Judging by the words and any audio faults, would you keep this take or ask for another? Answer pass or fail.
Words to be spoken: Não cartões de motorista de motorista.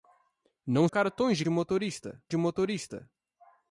pass